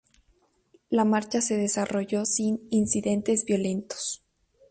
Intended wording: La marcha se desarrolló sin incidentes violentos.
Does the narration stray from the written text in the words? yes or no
no